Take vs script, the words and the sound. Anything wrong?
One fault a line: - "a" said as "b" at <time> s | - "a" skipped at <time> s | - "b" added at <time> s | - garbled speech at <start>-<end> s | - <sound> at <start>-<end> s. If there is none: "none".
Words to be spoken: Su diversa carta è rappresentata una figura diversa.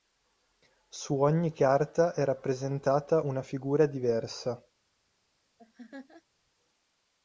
- "diversa" said as "ogni" at 1.2 s
- laugh at 5.6-6.2 s